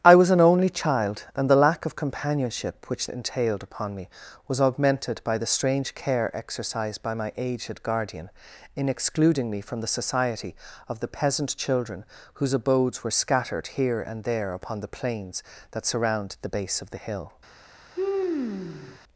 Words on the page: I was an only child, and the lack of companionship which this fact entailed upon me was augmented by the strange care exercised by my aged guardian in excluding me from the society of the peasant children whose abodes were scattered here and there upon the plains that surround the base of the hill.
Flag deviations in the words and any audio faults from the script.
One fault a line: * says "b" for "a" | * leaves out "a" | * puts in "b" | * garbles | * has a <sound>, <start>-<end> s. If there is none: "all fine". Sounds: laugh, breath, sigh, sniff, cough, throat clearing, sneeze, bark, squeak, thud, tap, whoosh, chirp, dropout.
* leaves out "this fact"
* has a sigh, 17.9-19.0 s